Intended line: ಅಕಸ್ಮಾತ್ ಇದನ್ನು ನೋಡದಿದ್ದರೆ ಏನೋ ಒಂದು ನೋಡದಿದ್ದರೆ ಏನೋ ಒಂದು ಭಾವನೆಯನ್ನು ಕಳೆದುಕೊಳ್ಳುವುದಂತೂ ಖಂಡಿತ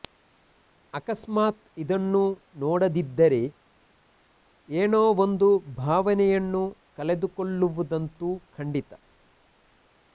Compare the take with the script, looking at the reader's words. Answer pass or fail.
fail